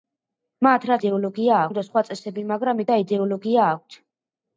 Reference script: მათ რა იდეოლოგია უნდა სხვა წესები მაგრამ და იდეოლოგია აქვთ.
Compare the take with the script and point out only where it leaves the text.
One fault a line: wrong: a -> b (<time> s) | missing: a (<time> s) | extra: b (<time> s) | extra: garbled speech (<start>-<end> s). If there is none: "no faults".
no faults